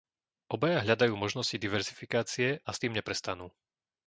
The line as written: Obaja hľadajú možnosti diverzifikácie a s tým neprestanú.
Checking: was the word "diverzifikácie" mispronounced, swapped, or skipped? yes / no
no